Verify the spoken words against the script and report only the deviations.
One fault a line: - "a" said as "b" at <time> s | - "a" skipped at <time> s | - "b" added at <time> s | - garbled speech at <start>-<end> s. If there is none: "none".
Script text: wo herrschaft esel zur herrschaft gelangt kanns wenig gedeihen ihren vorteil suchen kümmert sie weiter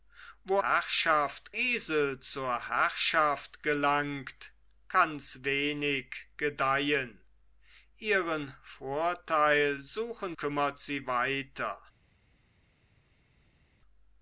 none